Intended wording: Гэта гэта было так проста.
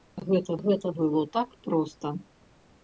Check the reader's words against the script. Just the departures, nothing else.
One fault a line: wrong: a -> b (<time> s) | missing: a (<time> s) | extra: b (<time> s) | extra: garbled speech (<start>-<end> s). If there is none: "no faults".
no faults